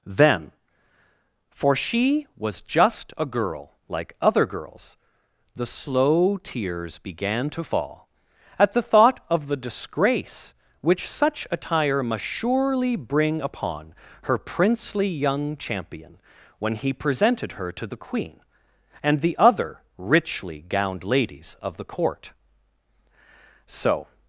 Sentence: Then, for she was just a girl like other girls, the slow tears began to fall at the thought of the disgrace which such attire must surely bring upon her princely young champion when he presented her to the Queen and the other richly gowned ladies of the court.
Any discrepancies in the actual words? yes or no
yes